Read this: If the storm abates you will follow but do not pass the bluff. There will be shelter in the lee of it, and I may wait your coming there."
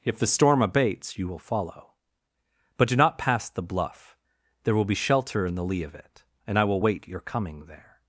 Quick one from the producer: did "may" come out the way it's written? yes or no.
no